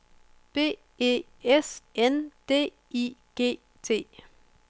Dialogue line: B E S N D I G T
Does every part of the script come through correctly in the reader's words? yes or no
yes